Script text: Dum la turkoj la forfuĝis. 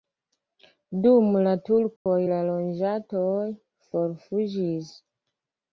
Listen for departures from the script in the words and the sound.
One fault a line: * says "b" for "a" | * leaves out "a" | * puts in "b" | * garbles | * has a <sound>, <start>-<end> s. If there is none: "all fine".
* has a dropout, 2.0-2.1 s
* puts in "loĝantoj"